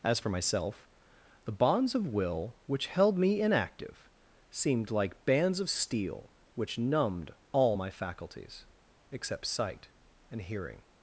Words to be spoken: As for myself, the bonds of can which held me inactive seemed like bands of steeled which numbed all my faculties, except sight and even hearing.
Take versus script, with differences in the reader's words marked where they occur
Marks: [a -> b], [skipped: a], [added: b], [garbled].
As for myself, the bonds of [can -> will] which held me inactive seemed like bands of [steeled -> steel] which numbed all my faculties, except sight and [skipped: even] hearing.